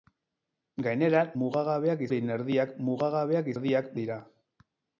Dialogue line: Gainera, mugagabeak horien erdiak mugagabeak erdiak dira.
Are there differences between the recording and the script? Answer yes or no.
no